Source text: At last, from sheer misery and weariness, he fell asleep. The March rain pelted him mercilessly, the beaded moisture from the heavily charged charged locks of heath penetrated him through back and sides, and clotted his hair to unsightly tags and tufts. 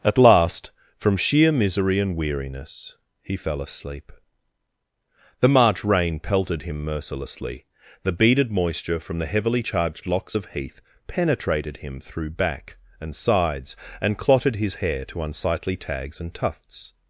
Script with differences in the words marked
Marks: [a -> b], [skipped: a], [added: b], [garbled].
At last, from sheer misery and weariness, he fell asleep. The March rain pelted him mercilessly, the beaded moisture from the heavily charged [skipped: charged] locks of heath penetrated him through back and sides, and clotted his hair to unsightly tags and tufts.